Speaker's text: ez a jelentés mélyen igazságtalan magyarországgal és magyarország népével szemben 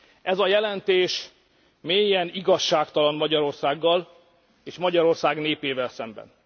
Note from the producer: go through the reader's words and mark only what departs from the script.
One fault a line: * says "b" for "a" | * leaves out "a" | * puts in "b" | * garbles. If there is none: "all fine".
all fine